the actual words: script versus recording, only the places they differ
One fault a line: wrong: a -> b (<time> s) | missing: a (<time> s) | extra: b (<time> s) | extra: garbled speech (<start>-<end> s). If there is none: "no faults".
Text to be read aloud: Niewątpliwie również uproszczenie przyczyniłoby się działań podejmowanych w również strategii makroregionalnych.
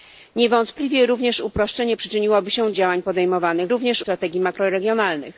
no faults